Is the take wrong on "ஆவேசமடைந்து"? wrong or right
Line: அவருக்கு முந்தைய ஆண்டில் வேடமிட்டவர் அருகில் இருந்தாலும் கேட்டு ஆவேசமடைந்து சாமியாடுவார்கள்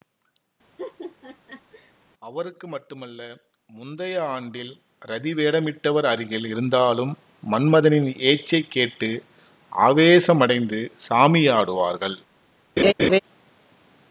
right